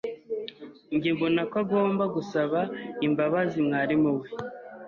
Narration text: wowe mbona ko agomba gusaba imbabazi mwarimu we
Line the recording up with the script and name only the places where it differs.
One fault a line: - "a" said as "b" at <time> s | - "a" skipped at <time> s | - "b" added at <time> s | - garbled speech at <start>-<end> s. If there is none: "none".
- "wowe" said as "njye" at 0.9 s